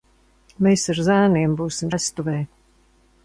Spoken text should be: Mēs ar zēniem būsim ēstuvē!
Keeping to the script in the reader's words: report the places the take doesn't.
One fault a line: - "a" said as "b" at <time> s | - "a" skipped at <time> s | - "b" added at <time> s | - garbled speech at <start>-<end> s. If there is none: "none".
none